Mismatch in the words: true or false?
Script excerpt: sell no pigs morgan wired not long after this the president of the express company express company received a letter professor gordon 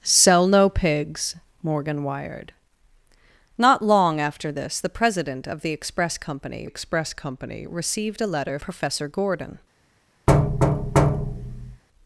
false